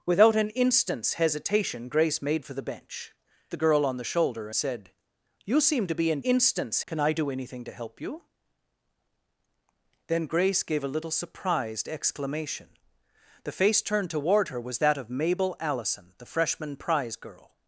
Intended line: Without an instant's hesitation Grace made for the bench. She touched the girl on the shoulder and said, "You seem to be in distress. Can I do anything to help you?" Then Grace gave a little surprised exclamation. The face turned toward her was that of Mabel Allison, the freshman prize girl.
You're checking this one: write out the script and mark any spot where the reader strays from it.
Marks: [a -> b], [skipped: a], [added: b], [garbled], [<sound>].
Without an instant's hesitation Grace made for the bench. [skipped: She touched] the girl on the shoulder [skipped: and] said, "You seem to be in [distress. -> instant's] Can I do anything to help you?" Then Grace gave a little surprised exclamation. The face turned toward her was that of Mabel Allison, the freshman prize girl.